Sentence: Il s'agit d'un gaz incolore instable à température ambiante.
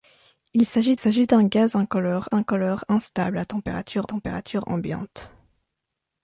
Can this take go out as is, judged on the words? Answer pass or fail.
fail